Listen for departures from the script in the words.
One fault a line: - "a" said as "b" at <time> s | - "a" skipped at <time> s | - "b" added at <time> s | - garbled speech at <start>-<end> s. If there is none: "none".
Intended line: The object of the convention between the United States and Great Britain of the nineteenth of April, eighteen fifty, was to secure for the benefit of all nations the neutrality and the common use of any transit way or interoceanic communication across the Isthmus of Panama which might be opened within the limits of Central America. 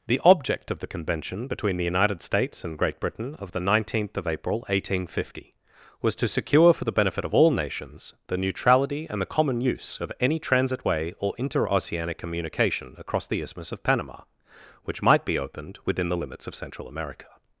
none